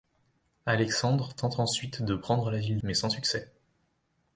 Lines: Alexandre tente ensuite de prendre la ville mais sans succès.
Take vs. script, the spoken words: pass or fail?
pass